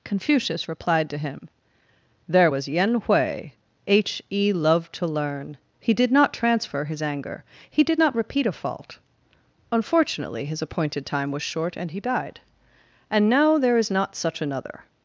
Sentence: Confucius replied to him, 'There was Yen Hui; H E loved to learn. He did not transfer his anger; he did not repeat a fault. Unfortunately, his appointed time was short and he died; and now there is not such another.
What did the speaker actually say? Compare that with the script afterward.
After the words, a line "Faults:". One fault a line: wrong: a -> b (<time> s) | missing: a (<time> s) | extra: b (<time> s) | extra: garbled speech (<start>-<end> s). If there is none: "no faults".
Confucius replied to him, 'There was Yen Hui; H E loved to learn. He did not transfer his anger; he did not repeat a fault. Unfortunately, his appointed time was short and he died; and now there is not such another.
Faults:
no faults